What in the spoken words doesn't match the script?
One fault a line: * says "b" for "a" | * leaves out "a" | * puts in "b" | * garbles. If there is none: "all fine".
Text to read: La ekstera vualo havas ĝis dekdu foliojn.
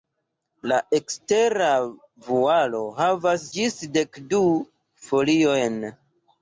all fine